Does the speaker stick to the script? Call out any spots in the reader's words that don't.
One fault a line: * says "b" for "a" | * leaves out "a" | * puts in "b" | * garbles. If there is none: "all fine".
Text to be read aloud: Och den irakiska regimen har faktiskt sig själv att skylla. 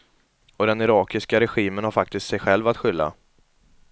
all fine